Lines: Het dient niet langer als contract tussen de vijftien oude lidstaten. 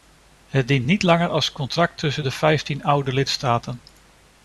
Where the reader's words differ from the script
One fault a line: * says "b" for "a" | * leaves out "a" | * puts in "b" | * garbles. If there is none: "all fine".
all fine